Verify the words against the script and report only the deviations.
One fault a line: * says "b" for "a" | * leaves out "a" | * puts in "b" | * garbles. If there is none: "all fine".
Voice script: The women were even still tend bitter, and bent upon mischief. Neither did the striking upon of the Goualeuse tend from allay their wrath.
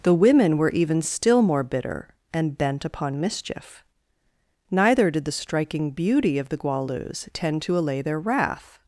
* says "more" for "tend"
* says "beauty" for "upon"
* says "to" for "from"